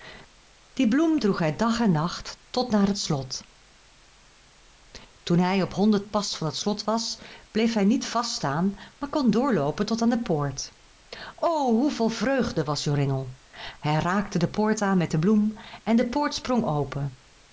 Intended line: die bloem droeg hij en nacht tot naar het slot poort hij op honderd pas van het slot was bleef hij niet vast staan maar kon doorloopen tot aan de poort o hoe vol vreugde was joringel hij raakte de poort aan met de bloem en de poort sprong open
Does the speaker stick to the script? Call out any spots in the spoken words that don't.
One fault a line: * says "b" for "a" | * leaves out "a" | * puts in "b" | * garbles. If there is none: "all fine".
* puts in "dag"
* says "toen" for "poort"